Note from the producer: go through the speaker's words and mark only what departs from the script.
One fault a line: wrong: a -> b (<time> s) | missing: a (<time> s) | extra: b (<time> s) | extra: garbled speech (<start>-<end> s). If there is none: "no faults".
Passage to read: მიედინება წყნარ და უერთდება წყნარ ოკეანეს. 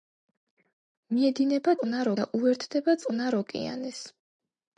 no faults